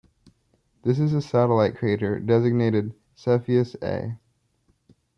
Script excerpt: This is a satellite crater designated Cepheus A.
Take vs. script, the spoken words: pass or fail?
pass